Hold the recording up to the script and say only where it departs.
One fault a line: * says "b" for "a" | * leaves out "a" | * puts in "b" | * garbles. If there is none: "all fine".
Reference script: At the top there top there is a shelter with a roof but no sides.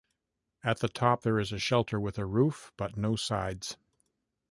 * leaves out "top there"